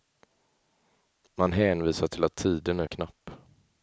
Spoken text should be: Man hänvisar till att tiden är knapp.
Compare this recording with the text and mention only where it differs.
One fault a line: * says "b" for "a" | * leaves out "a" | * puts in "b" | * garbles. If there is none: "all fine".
all fine